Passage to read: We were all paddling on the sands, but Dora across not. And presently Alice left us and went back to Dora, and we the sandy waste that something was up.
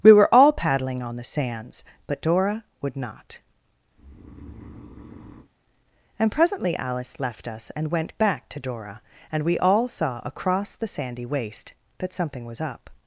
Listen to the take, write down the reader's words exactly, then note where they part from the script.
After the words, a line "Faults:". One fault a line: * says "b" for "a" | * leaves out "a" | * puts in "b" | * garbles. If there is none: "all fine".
We were all paddling on the sands, but Dora would not. And presently Alice left us and went back to Dora, and we all saw across the sandy waste that something was up.
Faults:
* says "would" for "across"
* puts in "all saw across"